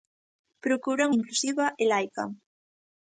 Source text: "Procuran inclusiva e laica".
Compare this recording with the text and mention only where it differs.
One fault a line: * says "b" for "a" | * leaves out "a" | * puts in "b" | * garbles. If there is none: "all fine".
all fine